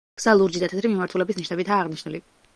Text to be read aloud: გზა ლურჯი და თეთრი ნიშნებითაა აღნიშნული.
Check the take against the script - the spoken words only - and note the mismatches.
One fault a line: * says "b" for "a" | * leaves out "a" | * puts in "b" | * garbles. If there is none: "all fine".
* puts in "მიმართულების"